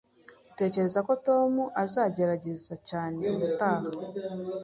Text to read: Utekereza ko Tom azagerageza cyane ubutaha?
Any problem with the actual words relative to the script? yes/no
no